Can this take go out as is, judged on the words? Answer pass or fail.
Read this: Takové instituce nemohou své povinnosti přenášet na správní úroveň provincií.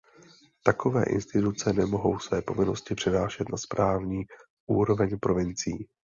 pass